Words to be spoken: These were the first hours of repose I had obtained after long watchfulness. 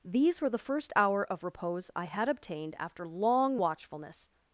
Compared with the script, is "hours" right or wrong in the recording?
wrong